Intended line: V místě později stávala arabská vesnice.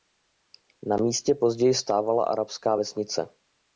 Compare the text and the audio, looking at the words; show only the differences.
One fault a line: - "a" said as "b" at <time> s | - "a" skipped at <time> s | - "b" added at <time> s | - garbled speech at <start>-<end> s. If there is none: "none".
- "V" said as "Na" at 0.8 s